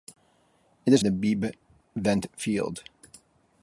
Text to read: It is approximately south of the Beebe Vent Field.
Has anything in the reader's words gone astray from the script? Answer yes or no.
yes